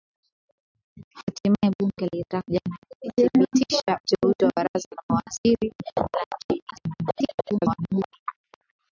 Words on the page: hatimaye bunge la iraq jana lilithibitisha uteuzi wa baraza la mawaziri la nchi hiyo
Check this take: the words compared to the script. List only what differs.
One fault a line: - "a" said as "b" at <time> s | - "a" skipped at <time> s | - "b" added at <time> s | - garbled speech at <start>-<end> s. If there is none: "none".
- garbled speech at 6.7-8.1 s